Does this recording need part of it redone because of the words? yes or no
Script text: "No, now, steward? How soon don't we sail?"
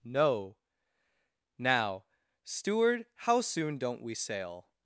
no